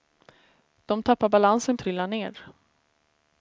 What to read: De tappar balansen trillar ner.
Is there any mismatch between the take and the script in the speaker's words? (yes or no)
no